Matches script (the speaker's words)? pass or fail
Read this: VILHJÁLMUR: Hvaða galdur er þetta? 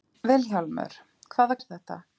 fail